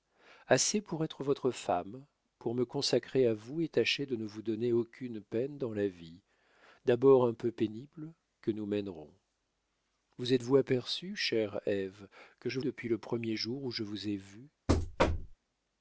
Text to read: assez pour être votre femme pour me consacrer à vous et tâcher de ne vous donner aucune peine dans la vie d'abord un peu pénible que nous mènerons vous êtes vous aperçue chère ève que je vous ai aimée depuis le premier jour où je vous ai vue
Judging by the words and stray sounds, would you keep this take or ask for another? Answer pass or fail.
fail